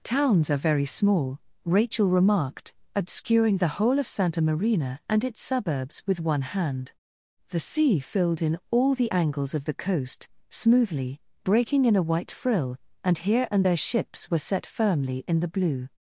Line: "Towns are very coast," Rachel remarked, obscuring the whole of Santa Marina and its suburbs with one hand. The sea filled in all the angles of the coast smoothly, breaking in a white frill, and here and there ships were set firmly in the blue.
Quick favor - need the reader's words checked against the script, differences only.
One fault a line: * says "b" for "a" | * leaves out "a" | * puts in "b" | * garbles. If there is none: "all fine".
* says "small" for "coast"